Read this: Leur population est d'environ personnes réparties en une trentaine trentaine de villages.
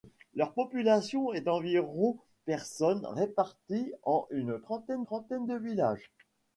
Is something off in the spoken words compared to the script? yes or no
no